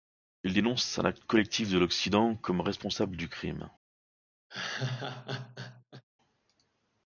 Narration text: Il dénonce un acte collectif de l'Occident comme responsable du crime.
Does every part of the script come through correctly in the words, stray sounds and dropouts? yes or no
no